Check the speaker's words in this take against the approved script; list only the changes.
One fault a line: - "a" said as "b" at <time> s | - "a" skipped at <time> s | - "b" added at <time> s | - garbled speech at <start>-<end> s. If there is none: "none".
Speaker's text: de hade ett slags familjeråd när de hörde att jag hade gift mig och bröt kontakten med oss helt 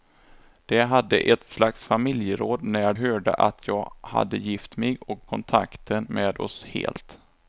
- "de" skipped at 2.9 s
- "bröt" skipped at 5.2 s